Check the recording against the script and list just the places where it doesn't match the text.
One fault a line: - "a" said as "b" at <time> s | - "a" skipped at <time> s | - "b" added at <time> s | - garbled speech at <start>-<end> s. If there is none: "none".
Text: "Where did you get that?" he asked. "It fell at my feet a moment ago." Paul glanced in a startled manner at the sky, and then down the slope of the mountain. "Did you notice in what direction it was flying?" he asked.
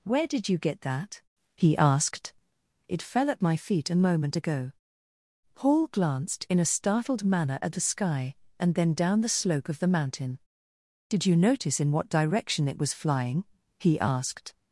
none